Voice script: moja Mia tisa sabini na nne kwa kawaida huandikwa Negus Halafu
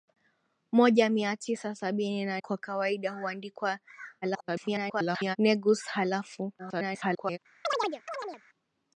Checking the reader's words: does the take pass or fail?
fail